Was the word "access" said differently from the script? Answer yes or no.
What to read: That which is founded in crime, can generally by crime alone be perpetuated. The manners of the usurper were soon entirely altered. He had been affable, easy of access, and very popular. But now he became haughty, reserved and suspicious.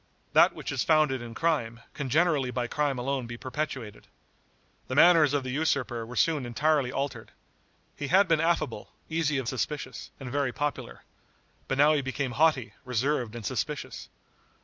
yes